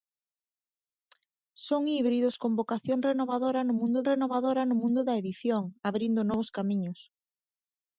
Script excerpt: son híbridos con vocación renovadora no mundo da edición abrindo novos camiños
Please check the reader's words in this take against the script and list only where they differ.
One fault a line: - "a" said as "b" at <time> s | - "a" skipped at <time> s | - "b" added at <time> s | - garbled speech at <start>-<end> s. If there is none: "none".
- "renovadora no mundo" added at 4.1 s